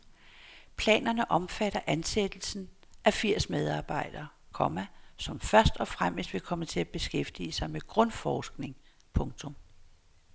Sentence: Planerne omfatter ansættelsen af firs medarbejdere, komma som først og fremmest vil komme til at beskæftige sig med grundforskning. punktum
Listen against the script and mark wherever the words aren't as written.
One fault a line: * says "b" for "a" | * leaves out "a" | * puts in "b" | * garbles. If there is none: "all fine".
all fine